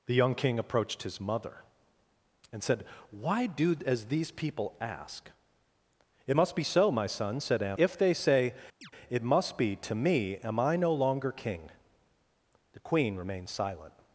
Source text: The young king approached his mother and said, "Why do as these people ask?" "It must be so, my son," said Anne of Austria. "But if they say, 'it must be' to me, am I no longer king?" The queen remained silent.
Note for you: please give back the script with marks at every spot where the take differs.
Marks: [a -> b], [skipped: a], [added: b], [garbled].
The young king approached his mother and said, "Why do as these people ask?" "It must be so, my son," said Anne [skipped: of Austria. "But] if they say, 'it must be' to me, am I no longer king?" The queen remained silent.